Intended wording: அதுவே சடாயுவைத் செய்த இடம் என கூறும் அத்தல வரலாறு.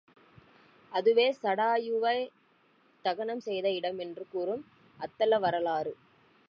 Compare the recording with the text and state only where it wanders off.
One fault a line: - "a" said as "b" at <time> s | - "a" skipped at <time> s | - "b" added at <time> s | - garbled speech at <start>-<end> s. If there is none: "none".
- "தகனம்" added at 3.0 s
- "என" said as "என்று" at 4.0 s